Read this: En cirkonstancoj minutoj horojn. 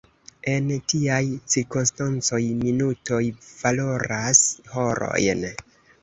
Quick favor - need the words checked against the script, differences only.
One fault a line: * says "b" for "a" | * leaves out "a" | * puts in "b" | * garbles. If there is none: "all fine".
* puts in "tiaj"
* puts in "valoras"